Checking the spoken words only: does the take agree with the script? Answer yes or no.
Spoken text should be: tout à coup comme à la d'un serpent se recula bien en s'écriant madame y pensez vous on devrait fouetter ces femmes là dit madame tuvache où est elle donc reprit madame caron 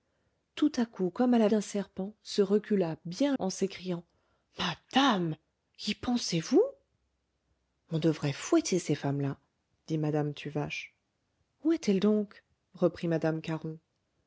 yes